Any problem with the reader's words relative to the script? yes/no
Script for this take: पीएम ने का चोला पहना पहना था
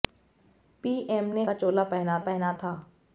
no